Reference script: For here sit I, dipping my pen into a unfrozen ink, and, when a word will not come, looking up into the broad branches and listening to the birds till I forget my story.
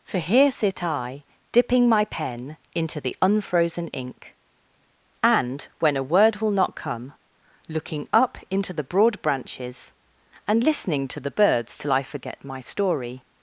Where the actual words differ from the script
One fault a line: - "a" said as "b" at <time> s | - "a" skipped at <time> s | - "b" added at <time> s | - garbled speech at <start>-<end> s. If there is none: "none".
- "a" said as "the" at 3.0 s